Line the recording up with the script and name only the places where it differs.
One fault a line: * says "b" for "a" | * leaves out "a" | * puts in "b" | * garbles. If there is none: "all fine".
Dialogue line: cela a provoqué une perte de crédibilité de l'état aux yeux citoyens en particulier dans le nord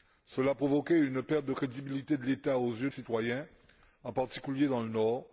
all fine